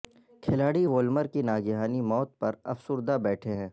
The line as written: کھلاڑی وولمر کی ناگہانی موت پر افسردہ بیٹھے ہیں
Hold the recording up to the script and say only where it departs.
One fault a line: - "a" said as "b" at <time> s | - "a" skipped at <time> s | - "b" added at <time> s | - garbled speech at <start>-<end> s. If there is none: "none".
none